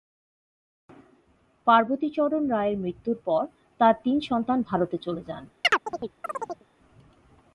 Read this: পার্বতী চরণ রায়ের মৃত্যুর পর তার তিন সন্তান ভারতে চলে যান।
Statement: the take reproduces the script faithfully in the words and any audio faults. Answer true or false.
false